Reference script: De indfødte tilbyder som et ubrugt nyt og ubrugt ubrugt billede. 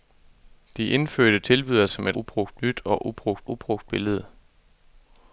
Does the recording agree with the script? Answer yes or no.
yes